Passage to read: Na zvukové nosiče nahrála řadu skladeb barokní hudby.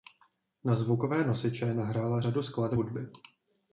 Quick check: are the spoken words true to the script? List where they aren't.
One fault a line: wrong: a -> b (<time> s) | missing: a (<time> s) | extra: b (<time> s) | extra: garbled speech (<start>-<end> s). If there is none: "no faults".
missing: barokní (2.8 s)